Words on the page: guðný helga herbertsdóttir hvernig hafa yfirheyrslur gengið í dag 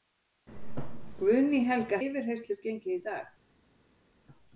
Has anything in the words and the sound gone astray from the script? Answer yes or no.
yes